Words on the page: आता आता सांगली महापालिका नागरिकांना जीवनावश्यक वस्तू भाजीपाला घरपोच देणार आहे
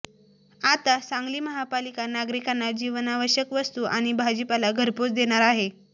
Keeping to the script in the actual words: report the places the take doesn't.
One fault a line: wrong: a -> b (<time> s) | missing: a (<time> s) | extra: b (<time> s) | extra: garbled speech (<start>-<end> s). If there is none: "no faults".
missing: आता (1.0 s)
extra: आणि (3.9 s)